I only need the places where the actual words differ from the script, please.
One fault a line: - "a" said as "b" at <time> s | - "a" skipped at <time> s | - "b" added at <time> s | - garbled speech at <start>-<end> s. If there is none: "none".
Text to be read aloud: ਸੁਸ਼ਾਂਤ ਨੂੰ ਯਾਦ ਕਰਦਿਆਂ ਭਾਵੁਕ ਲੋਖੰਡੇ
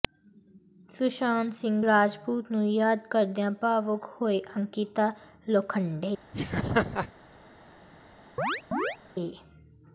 - "ਸਿੰਘ ਰਾਜਪੂਤ" added at 1.5 s
- "ਹੋਈ ਅੰਕਿਤਾ" added at 4.2 s